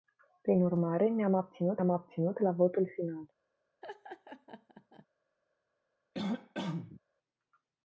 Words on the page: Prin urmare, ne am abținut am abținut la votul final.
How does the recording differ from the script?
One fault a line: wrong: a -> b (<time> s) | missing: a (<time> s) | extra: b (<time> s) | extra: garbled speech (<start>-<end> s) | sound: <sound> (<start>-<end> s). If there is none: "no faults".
sound: laugh (3.8-5.1 s)
sound: cough (6.1-7.0 s)